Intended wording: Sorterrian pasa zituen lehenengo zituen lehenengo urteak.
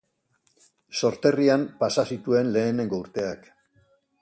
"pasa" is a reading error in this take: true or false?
false